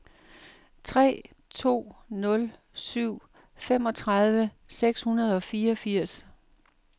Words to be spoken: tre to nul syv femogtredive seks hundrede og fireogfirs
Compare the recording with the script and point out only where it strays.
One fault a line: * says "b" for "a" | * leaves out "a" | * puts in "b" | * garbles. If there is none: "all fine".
all fine